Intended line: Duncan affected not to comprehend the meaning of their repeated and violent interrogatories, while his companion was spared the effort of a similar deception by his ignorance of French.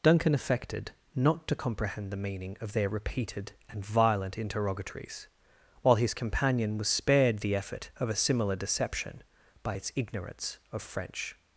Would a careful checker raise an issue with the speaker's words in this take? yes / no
yes